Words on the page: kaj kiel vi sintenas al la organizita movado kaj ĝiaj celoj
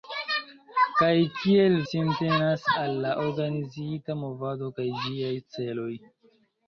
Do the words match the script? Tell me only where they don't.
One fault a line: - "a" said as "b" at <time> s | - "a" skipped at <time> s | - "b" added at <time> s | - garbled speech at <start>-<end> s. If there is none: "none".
- "vi" skipped at 1.8 s